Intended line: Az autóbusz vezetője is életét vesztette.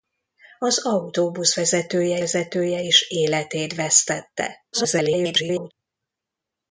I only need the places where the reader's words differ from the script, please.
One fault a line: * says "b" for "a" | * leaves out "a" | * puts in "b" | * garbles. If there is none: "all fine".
* puts in "vezetője"
* garbles